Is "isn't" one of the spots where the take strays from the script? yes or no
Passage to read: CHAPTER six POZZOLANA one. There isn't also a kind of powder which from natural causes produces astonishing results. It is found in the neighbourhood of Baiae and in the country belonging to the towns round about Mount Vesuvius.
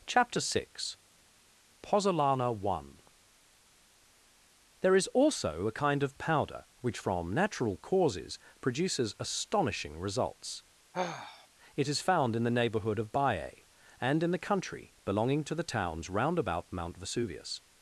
yes